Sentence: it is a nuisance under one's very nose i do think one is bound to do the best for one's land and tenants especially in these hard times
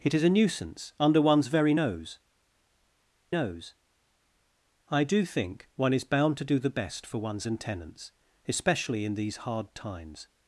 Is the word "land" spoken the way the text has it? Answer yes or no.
no